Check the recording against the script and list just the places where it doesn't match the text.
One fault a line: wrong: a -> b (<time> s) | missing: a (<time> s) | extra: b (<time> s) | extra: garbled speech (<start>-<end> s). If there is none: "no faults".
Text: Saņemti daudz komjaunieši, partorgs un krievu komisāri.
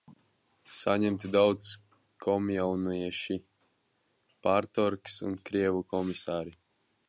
no faults